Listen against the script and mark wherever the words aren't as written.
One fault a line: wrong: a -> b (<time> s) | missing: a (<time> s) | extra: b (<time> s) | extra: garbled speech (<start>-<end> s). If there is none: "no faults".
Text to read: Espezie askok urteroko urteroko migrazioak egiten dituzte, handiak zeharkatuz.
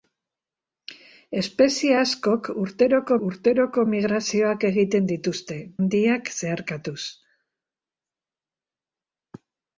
no faults